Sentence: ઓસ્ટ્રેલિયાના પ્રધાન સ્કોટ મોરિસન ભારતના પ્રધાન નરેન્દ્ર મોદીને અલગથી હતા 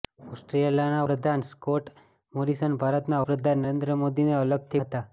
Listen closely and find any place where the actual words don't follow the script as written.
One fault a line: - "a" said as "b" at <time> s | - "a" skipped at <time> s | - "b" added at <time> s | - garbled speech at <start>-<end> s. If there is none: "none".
none